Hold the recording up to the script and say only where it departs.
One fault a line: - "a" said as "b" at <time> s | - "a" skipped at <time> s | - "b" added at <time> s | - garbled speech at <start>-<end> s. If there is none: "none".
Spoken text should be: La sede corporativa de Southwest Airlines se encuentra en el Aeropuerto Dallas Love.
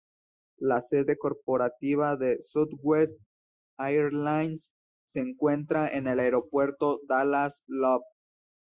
none